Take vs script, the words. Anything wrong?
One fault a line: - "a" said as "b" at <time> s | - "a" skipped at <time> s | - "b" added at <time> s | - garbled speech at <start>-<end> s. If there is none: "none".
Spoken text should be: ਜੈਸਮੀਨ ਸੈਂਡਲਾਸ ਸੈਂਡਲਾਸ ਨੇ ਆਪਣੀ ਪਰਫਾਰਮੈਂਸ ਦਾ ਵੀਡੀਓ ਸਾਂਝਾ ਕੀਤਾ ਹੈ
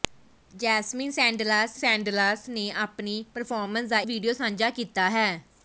none